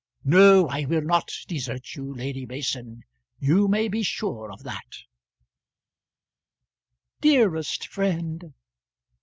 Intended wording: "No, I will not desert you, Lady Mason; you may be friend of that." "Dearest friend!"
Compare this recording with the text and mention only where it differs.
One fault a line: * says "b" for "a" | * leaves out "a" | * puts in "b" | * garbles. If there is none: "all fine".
* says "sure" for "friend"